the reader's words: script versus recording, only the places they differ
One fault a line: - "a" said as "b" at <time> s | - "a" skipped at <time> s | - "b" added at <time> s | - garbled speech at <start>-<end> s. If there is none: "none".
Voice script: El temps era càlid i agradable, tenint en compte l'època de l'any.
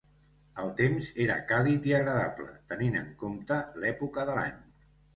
none